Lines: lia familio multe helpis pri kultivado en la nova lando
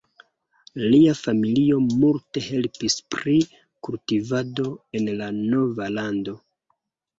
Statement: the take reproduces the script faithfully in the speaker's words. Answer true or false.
true